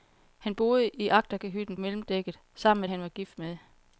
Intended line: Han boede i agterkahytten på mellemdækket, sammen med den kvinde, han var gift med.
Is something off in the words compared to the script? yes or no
yes